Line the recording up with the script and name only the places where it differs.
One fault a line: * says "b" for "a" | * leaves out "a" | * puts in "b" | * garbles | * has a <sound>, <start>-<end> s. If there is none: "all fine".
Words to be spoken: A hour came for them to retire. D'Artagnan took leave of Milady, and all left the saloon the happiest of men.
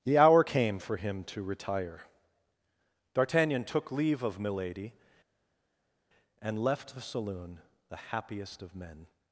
* says "The" for "A"
* says "him" for "them"
* leaves out "all"